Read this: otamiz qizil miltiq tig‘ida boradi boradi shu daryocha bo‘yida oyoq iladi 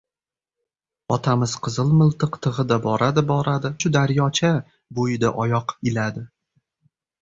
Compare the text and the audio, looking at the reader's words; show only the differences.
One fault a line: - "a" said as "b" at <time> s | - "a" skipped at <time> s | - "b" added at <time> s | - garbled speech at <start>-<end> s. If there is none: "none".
none